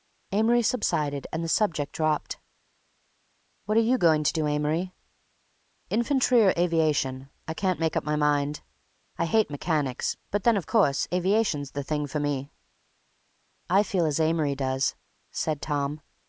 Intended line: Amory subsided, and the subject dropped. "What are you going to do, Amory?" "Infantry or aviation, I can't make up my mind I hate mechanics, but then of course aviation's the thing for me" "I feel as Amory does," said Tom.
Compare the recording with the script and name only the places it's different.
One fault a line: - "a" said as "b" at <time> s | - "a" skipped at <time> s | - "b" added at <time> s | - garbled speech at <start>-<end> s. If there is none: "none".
none